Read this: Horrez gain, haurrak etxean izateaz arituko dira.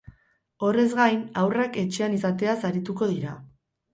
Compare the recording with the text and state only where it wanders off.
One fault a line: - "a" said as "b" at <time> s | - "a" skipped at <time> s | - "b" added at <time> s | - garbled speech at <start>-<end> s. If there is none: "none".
none